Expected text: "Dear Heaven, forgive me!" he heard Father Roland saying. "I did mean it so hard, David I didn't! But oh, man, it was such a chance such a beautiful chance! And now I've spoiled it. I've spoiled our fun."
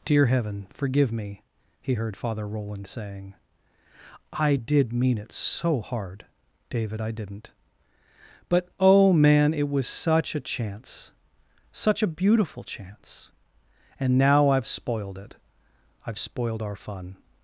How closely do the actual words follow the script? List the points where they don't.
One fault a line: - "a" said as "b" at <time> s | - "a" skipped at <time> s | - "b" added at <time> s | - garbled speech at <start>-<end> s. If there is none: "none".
none